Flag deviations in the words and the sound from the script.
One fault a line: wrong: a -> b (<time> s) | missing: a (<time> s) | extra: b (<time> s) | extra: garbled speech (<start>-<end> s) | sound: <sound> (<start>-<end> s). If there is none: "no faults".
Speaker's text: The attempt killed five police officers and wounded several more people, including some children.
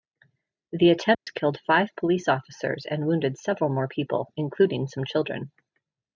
sound: dropout (1.1-1.3 s)